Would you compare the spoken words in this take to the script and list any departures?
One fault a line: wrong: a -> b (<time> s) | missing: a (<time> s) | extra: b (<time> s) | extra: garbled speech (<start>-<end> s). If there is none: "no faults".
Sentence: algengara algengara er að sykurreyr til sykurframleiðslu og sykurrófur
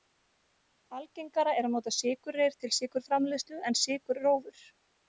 missing: algengara (1.5 s)
extra: nota (1.8 s)
wrong: og -> en (3.7 s)